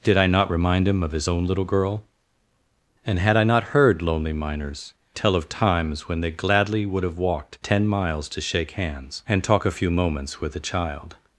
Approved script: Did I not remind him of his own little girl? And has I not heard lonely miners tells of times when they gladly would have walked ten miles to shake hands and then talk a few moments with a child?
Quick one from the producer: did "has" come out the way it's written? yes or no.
no